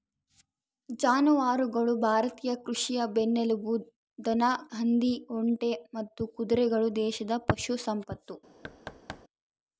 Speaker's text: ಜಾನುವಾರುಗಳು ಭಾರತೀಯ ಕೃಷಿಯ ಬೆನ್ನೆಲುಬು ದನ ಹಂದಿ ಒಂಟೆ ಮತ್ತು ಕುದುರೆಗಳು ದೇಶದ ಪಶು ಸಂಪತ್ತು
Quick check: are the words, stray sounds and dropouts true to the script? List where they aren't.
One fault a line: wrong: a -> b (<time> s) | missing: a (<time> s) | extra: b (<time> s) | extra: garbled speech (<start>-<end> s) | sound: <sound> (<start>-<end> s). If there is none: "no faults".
sound: thud (8.6-9.2 s)